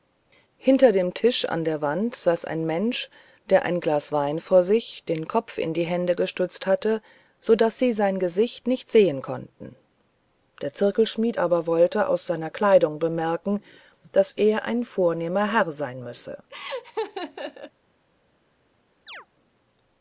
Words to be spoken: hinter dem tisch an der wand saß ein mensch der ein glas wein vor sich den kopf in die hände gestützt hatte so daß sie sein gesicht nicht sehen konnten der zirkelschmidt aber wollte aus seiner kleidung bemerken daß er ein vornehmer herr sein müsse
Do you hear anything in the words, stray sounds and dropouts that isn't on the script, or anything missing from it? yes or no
yes